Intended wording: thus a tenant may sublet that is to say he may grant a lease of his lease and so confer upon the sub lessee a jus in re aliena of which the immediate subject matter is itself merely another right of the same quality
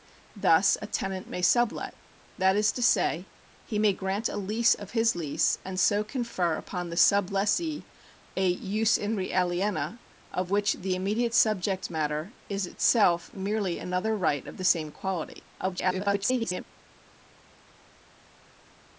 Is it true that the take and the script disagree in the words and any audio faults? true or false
true